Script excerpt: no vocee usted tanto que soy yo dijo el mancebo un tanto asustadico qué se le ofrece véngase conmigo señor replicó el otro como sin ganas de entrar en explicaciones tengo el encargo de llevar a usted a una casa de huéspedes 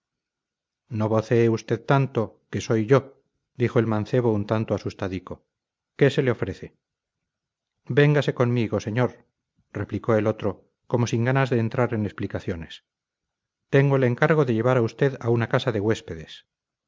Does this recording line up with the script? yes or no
yes